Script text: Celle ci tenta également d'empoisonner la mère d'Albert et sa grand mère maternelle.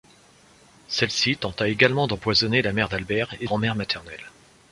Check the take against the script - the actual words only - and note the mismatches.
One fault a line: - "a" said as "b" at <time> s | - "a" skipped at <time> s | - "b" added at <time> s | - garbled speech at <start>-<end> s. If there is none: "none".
- "sa" skipped at 3.5 s